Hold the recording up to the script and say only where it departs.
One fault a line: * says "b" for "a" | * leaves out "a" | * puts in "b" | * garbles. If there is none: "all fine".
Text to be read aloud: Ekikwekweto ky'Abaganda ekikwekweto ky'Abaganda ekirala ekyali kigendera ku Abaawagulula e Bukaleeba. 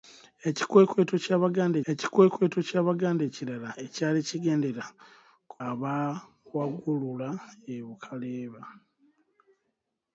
all fine